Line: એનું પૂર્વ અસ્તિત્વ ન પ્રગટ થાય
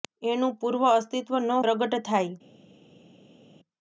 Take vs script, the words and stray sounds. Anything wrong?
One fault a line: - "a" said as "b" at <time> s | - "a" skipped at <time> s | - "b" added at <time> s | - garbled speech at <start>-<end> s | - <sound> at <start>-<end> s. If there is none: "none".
none